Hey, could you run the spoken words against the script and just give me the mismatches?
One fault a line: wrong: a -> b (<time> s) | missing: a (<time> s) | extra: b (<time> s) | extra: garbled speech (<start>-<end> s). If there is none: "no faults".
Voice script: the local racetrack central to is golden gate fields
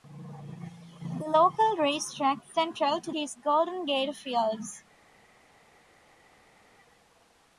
no faults